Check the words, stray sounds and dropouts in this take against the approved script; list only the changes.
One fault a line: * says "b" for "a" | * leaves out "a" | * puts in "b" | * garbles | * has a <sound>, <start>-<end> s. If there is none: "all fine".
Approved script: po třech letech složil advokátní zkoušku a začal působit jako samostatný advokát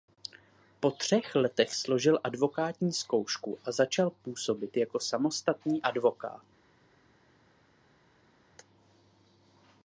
all fine